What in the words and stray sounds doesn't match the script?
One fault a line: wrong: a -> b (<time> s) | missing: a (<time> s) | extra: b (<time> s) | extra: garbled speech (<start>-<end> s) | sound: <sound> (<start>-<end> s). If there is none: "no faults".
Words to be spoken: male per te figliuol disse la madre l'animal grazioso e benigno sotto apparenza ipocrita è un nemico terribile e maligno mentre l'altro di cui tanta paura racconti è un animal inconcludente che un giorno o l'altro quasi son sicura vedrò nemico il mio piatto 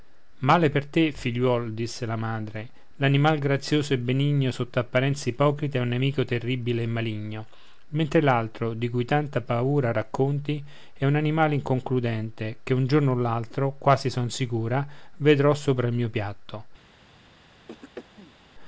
wrong: nemico -> sopra (15.5 s)
sound: throat clearing (17.7-18.4 s)